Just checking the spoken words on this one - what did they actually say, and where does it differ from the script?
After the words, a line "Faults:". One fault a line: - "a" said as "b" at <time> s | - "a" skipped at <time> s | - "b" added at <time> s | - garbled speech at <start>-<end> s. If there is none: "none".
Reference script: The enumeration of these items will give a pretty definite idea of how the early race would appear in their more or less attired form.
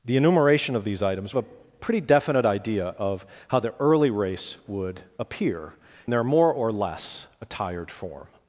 The enumeration of these items a pretty definite idea of how the early race would appear their more or less attired form.
Faults:
- "will give" skipped at 1.4 s
- "in" skipped at 5.7 s